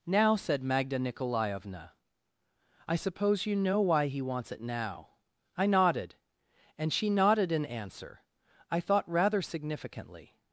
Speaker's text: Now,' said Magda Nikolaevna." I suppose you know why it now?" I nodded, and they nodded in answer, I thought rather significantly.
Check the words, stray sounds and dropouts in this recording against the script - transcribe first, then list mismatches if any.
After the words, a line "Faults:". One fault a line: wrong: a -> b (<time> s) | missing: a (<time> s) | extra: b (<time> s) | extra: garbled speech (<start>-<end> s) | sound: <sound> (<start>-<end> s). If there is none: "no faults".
Now,' said Magda Nikolaevna." I suppose you know why he wants it now?" I nodded, and she nodded in answer, I thought rather significantly.
Faults:
extra: he wants (4.1 s)
wrong: they -> she (6.9 s)